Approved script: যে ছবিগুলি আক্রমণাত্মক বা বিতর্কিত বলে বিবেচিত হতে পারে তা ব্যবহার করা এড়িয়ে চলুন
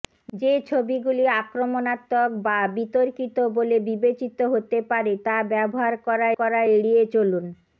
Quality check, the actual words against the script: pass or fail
fail